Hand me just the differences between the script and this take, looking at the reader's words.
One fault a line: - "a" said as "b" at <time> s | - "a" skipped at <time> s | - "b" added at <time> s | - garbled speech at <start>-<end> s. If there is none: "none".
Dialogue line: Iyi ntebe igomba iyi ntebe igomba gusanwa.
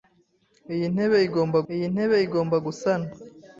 none